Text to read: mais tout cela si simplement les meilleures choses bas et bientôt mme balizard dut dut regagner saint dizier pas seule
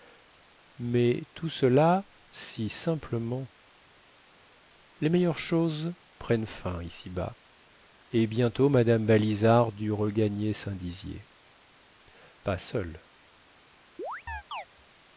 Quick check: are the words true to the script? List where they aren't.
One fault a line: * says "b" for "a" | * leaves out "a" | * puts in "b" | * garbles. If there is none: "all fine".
* puts in "prennent fin ici"
* leaves out "dut"